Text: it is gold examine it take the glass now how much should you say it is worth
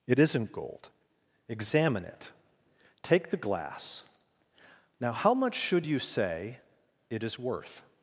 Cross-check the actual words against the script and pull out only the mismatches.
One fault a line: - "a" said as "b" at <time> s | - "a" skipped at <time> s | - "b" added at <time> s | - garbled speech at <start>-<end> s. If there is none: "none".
- "is" said as "isn't" at 0.2 s